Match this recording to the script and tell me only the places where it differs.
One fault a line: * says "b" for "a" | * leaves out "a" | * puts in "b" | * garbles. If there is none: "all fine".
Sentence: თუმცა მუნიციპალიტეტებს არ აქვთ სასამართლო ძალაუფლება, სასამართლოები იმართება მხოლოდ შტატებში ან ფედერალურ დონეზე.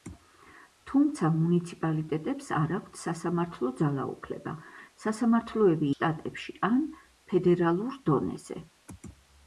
* leaves out "იმართება მხოლოდ"